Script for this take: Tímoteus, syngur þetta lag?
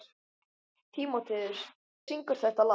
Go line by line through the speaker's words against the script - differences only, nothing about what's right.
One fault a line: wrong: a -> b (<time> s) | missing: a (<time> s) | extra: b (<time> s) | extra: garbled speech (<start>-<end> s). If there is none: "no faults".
no faults